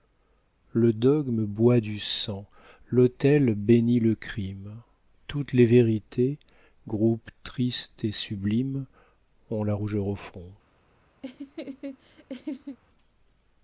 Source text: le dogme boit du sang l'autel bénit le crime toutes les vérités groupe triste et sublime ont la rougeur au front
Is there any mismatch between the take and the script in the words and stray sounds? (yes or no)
yes